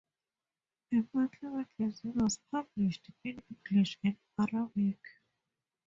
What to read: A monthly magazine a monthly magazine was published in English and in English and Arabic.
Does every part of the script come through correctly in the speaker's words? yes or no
no